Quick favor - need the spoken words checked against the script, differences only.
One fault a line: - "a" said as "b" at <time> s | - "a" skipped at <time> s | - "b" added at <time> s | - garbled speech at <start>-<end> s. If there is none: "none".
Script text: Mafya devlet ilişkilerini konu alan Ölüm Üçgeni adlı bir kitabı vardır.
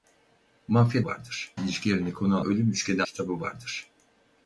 - "devlet" said as "vardır" at 1.0 s
- "alan" skipped at 2.4 s
- "adlı bir" skipped at 3.0 s